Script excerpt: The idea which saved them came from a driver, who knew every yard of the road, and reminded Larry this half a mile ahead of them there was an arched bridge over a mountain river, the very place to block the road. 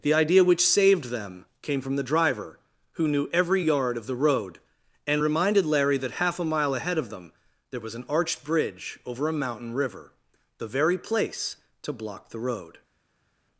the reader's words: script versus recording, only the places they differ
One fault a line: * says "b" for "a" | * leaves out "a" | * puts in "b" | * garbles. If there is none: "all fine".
* says "the" for "a"
* says "that" for "this"